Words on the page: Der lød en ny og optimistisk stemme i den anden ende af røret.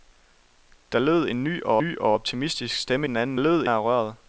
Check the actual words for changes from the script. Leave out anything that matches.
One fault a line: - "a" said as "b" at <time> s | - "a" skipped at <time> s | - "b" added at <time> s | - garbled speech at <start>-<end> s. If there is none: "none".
- "ny og" added at 1.8 s
- "i" skipped at 3.1 s
- "ende" said as "lød" at 3.4 s